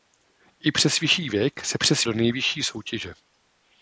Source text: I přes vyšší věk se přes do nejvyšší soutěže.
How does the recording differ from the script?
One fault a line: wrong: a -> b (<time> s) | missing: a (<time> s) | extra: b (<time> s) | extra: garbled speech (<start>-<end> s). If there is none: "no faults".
no faults